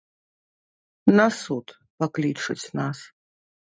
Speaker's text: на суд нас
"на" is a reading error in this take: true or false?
false